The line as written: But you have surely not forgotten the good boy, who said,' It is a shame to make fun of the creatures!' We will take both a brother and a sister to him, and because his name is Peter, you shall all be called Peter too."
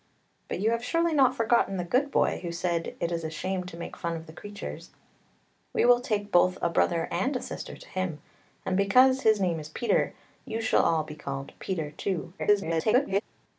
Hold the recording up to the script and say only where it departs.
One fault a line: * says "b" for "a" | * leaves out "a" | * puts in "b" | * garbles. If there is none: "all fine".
* garbles